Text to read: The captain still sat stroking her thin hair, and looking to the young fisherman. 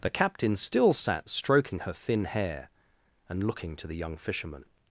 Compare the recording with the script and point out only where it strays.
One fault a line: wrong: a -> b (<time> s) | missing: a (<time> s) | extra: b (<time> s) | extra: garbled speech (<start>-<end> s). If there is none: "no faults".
no faults